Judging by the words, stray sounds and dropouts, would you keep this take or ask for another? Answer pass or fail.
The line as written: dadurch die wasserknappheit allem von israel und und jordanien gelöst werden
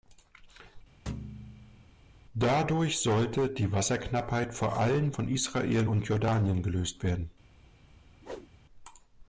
fail